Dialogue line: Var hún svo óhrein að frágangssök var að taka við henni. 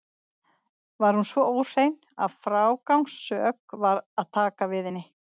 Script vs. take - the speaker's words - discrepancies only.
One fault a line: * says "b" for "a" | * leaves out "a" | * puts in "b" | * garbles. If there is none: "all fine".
all fine